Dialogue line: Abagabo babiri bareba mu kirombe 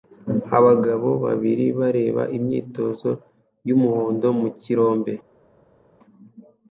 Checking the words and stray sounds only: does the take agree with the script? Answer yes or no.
no